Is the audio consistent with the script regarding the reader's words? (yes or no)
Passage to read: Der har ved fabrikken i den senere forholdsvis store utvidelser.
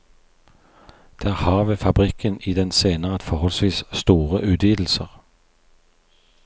yes